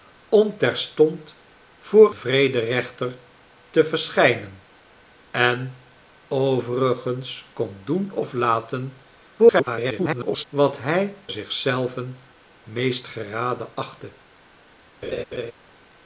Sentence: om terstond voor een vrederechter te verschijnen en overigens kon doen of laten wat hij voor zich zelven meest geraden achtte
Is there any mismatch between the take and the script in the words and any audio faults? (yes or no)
yes